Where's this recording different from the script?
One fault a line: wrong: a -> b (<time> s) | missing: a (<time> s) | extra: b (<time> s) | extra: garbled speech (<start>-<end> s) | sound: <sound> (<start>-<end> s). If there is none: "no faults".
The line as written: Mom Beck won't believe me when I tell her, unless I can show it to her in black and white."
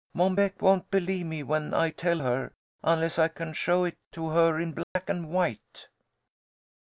sound: dropout (4.8-5.0 s)